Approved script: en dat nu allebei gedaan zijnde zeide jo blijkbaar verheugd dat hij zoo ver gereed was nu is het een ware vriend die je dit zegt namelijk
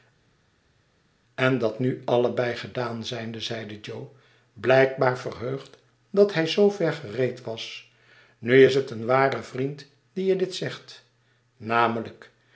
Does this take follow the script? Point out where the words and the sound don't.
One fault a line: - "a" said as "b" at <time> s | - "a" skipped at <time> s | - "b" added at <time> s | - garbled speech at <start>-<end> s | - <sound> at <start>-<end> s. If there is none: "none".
none